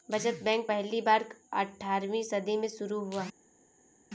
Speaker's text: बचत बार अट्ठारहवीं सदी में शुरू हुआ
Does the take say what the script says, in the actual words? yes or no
no